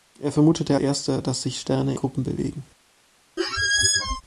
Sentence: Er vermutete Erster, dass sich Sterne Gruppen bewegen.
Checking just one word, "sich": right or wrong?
right